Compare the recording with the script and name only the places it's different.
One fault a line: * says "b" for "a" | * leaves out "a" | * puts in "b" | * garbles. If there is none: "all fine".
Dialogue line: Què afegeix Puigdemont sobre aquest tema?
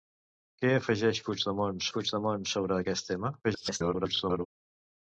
* puts in "Puigdemont"
* garbles